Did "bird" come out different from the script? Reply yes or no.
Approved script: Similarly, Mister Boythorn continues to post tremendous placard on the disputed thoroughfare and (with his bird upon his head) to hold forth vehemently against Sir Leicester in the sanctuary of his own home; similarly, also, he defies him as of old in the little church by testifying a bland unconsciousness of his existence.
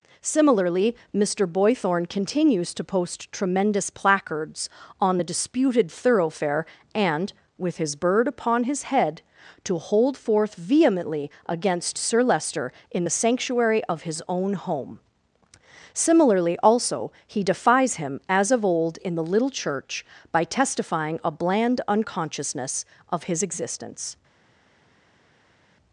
no